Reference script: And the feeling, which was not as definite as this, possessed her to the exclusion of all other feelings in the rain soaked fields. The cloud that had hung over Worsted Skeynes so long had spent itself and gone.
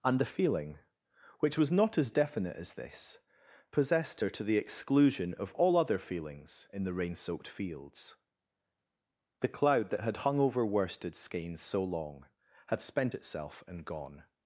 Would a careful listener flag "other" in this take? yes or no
no